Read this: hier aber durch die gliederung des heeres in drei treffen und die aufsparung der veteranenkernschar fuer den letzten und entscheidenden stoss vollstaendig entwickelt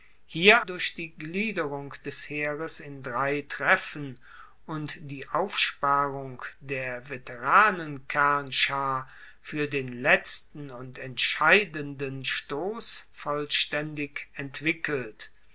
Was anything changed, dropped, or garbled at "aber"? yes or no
yes